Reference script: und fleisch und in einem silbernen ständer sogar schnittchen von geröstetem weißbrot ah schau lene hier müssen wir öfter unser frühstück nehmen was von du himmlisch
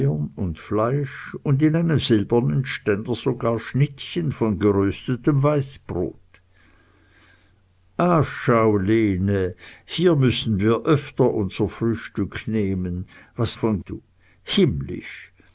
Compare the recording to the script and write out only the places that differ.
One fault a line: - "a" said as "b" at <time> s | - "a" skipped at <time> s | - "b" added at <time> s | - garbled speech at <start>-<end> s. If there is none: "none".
none